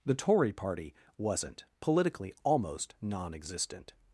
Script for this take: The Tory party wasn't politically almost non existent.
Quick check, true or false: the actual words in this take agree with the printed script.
true